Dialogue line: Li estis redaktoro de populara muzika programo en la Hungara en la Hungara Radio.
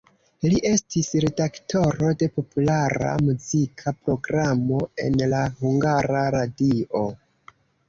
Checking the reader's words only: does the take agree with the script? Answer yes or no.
no